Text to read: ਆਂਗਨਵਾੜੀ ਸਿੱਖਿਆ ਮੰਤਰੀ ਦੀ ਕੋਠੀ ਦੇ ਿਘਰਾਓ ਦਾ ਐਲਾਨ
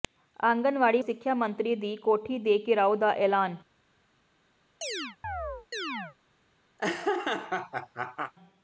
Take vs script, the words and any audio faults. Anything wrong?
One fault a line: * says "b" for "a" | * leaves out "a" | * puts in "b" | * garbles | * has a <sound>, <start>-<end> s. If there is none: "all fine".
* has a chirp, 4.8-6.2 s
* has a laugh, 6.8-8.3 s